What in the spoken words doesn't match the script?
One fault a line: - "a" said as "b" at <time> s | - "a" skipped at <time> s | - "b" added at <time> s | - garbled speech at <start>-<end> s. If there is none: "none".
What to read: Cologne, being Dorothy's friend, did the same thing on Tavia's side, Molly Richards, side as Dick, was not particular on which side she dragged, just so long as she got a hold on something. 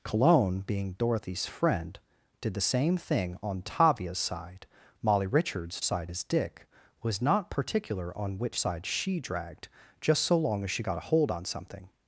none